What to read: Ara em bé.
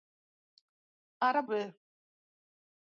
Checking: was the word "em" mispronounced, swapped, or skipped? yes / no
no